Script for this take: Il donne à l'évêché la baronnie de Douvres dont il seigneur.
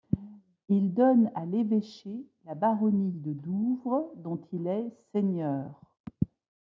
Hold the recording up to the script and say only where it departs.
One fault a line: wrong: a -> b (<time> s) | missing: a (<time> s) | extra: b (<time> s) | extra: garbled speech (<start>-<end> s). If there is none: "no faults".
extra: est (4.7 s)